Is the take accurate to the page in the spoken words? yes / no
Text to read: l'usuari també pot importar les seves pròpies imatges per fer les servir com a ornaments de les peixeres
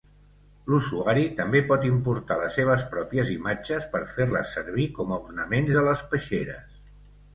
yes